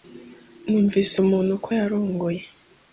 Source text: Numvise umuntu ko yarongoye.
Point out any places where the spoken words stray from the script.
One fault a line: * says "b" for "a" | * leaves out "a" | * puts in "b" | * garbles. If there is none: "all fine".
all fine